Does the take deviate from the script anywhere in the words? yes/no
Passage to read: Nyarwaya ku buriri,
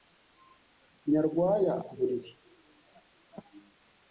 no